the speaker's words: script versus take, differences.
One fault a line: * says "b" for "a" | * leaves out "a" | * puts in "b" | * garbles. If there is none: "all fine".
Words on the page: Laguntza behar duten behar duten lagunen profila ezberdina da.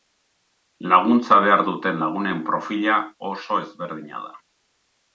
* leaves out "behar duten"
* puts in "oso"